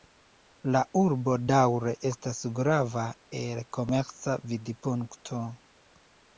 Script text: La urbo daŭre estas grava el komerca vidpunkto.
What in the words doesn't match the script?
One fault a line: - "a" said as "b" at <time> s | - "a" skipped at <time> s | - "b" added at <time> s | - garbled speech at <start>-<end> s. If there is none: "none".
none